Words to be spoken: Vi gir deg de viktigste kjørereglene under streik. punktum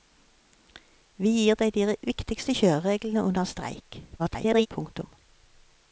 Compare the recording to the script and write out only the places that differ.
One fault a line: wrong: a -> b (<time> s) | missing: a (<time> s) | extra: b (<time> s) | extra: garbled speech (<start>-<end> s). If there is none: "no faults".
extra: garbled speech (4.2-4.7 s)